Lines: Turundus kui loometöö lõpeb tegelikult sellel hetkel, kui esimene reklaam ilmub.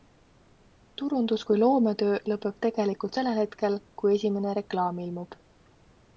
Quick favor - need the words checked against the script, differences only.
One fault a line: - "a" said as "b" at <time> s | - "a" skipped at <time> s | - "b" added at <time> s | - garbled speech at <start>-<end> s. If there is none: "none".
none